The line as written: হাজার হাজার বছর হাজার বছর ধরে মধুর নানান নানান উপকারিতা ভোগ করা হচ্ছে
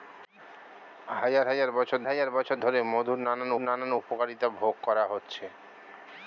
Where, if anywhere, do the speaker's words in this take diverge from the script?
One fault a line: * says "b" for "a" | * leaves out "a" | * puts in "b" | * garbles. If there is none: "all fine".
all fine